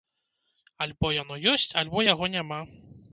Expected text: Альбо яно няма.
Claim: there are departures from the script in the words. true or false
true